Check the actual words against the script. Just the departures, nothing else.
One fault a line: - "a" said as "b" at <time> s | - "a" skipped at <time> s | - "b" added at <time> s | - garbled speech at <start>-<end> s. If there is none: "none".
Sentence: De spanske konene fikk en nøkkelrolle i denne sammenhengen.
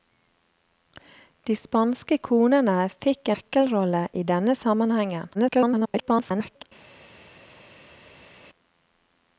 - "en" skipped at 3.3 s
- garbled speech at 5.3-6.6 s